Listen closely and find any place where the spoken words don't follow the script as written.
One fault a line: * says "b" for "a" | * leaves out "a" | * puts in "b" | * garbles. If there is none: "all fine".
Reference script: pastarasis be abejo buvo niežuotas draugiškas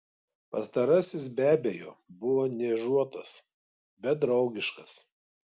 * puts in "bet"